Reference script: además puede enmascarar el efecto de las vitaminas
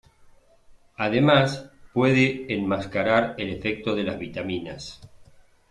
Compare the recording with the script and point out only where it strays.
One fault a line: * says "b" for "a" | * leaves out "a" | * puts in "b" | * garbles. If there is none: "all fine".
all fine